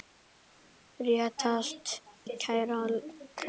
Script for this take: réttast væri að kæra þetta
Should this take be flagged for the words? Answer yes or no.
yes